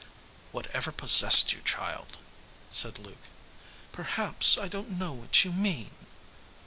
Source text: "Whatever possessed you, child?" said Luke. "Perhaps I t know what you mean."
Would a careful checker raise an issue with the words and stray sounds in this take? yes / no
yes